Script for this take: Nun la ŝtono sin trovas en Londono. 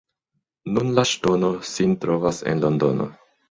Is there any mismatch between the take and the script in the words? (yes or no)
no